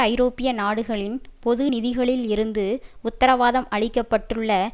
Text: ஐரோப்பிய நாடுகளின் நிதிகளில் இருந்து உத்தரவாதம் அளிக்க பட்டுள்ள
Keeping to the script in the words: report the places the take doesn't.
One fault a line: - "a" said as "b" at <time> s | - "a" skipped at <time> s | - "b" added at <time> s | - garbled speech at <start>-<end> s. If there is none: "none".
- "பொது" added at 1.4 s